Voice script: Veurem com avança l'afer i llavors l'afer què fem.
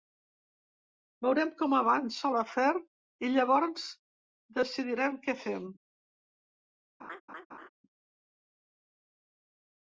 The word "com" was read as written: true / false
true